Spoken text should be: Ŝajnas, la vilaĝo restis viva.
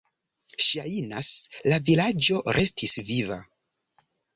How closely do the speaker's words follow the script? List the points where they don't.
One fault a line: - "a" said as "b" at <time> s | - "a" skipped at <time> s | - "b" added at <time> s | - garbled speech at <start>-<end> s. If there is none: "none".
none